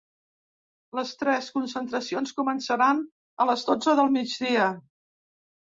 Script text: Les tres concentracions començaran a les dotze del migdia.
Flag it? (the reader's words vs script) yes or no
no